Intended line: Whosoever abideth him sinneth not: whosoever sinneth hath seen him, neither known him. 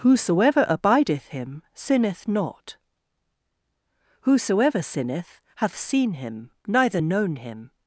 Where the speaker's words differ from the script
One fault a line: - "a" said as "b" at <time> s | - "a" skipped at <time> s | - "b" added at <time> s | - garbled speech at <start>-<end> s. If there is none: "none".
none